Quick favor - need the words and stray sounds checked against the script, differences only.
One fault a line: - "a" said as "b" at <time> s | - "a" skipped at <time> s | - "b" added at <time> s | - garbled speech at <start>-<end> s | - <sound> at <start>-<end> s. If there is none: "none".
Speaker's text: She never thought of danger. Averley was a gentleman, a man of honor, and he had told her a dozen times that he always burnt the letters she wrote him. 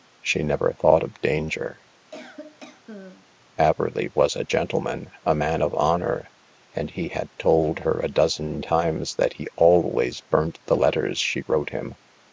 - cough at 2.1-3.3 s